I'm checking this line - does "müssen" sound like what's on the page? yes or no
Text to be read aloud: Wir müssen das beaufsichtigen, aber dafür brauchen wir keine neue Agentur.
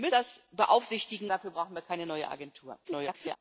no